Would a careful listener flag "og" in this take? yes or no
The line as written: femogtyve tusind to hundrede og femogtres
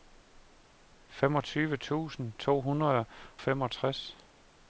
yes